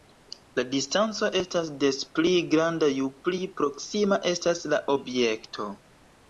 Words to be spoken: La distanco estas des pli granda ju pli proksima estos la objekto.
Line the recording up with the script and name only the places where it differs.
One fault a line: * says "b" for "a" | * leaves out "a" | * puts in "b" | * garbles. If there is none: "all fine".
* says "estas" for "estos"